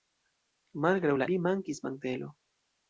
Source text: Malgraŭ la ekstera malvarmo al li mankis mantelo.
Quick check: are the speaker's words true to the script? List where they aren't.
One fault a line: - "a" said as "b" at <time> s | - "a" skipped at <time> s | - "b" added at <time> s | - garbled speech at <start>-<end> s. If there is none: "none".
- "ekstera malvarmo al" skipped at 1.3 s